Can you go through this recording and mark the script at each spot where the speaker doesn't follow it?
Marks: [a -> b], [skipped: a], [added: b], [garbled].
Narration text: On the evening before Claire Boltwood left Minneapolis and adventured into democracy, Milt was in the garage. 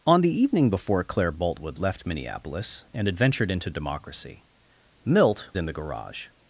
On the evening before Claire Boltwood left Minneapolis and adventured into democracy, Milt [skipped: was] in the garage.